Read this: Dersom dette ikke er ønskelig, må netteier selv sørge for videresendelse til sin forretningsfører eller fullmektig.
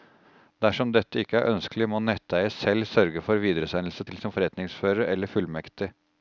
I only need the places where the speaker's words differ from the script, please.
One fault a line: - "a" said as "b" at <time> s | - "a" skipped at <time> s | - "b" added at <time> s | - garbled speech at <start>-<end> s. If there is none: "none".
none